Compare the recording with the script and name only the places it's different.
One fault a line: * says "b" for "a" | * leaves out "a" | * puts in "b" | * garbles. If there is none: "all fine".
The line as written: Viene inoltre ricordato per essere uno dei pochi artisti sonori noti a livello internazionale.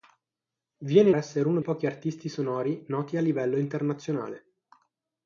* leaves out "inoltre ricordato per"
* leaves out "dei"